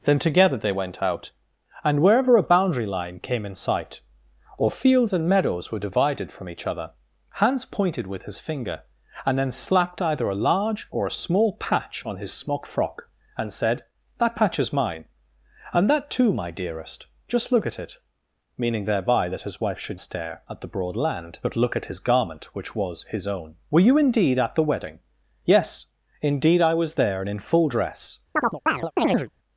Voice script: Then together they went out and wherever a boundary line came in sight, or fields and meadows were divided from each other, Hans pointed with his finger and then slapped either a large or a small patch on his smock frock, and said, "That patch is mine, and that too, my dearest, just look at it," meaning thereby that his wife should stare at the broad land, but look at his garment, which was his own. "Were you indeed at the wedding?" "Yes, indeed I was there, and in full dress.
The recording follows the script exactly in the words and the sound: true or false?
false